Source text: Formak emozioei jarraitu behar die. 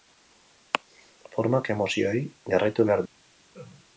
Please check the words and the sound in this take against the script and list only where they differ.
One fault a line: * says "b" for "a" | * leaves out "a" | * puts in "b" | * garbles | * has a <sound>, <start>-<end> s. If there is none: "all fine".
* has a laugh, 3.5-3.9 s